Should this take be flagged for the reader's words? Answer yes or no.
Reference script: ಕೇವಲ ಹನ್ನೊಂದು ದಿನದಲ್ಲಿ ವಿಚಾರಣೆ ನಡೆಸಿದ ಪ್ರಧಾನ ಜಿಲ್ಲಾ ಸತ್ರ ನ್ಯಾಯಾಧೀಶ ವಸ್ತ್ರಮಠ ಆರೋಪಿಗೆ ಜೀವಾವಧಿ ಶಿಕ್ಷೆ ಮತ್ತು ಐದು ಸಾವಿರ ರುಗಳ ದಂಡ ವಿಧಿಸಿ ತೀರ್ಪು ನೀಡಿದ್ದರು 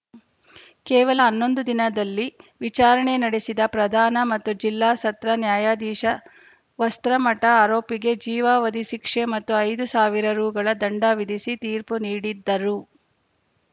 yes